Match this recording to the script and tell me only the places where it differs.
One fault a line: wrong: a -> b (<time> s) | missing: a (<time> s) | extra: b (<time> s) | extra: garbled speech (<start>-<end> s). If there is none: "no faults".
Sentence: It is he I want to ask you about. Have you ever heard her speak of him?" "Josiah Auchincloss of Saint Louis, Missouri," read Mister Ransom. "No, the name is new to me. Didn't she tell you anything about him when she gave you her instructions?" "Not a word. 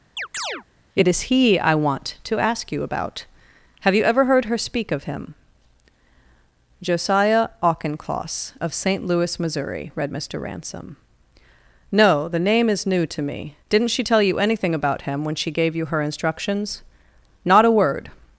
no faults